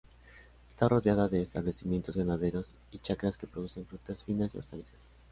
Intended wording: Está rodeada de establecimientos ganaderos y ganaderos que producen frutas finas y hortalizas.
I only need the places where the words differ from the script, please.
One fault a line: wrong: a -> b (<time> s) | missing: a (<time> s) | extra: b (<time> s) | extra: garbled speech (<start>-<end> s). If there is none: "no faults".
wrong: ganaderos -> chacras (3.0 s)